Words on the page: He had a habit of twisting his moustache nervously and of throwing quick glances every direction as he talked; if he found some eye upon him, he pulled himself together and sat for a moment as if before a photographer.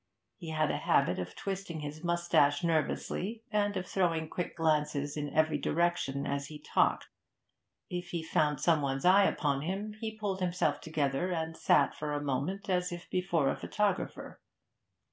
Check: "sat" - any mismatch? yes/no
no